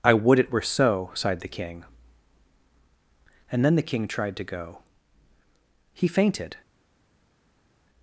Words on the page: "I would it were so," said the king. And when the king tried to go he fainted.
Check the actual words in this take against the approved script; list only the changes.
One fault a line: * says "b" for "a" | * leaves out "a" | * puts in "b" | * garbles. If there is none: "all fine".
* says "sighed" for "said"
* says "then" for "when"